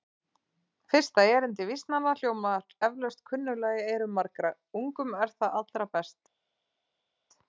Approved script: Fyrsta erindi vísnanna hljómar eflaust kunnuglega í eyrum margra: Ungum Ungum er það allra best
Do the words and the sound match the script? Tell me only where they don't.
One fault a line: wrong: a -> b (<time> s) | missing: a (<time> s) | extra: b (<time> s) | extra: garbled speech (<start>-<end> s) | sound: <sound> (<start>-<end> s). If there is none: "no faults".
missing: Ungum (5.2 s)